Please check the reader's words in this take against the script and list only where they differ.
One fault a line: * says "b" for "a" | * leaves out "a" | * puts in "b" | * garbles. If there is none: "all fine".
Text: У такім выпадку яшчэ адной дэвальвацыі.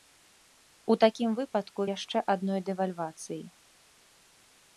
all fine